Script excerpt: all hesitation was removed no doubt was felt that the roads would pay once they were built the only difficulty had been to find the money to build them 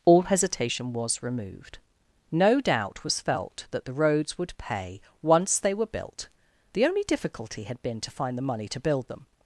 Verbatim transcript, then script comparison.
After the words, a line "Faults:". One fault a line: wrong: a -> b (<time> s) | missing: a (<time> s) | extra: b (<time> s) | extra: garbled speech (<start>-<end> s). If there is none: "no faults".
all hesitation was removed no doubt was felt that the roads would pay once they were built the only difficulty had been to find the money to build them
Faults:
no faults